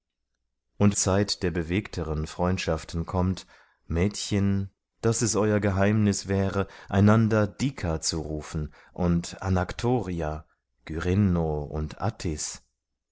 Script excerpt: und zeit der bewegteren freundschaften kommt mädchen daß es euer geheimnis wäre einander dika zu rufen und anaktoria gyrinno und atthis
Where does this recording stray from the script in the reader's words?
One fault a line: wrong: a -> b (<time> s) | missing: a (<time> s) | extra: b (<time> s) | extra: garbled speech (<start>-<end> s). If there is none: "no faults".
no faults